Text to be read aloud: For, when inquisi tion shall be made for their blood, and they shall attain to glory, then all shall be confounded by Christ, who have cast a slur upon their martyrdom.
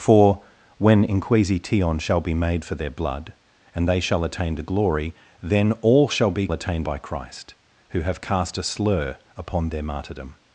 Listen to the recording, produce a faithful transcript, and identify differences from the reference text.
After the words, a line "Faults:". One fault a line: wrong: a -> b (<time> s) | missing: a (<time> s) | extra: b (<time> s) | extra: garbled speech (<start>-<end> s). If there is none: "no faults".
For, when inquisi tion shall be made for their blood, and they shall attain to glory, then all shall be attain by Christ, who have cast a slur upon their martyrdom.
Faults:
wrong: confounded -> attain (6.5 s)